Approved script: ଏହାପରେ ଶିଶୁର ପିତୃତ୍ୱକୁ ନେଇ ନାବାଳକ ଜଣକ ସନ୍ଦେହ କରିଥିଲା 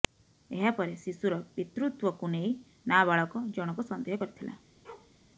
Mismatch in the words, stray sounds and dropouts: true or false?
true